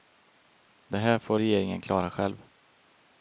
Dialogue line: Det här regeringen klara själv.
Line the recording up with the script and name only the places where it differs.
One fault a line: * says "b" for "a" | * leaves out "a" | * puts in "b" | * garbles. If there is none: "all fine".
* puts in "får"